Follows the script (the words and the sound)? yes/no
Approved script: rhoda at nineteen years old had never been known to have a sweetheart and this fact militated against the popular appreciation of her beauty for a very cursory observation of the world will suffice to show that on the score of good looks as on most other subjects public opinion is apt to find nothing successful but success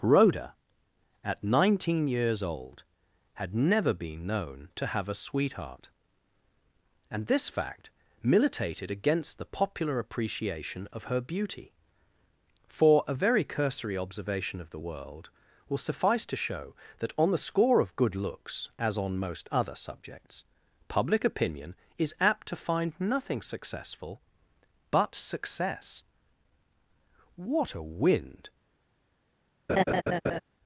no